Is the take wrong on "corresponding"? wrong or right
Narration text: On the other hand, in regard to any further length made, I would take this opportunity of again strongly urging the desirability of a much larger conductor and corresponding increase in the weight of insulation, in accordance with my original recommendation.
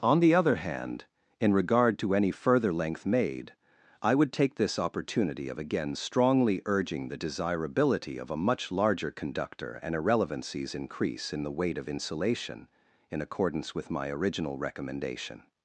wrong